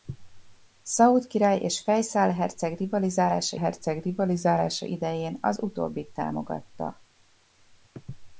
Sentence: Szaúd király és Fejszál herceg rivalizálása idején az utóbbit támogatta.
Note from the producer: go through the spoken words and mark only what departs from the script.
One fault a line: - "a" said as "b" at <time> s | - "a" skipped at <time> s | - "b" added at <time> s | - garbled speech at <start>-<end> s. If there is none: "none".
- "herceg rivalizálása" added at 3.5 s